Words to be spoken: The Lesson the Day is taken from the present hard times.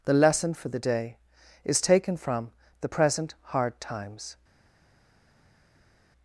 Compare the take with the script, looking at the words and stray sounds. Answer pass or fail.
fail